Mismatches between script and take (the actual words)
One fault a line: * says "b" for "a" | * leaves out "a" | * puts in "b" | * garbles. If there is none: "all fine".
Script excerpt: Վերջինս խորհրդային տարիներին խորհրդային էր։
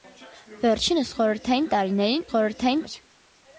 all fine